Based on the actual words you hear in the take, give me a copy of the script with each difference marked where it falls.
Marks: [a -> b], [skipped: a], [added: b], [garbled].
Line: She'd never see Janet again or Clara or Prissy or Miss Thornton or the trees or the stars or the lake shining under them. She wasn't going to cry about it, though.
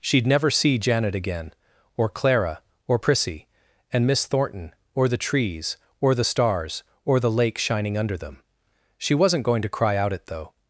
She'd never see Janet again or Clara or Prissy [or -> and] Miss Thornton or the trees or the stars or the lake shining under them. She wasn't going to cry [about -> out] it, though.